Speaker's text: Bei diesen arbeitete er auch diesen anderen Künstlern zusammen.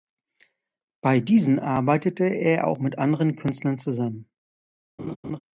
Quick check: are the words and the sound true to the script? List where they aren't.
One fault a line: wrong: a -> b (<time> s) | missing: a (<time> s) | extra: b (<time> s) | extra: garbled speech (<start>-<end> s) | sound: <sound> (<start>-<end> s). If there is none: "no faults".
wrong: diesen -> mit (2.8 s)
sound: laugh (5.0-5.4 s)